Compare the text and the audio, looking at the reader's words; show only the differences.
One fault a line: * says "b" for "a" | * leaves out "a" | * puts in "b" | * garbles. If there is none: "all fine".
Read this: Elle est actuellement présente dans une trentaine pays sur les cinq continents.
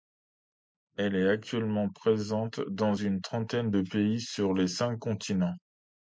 * puts in "de"